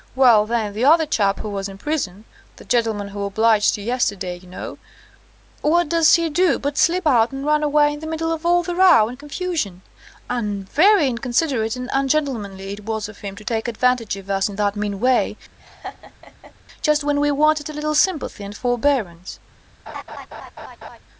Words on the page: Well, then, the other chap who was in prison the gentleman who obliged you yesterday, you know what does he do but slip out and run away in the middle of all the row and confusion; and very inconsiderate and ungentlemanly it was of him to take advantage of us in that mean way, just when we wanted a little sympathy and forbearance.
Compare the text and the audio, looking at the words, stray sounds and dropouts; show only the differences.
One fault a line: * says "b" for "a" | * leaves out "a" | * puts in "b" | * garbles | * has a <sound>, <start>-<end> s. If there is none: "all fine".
* has a laugh, 15.6-16.5 s
* has a laugh, 19.9-21.0 s